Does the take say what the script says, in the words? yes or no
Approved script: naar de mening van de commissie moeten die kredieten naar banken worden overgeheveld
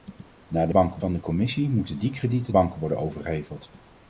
no